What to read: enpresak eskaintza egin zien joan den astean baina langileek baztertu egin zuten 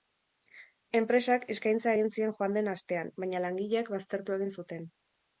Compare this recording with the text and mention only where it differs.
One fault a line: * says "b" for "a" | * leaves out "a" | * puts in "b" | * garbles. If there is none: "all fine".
all fine